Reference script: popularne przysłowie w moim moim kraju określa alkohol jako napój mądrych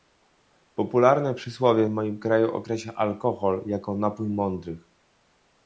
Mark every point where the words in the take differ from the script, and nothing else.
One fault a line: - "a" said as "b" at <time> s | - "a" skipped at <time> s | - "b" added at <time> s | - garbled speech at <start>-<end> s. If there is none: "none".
- "moim" skipped at 2.2 s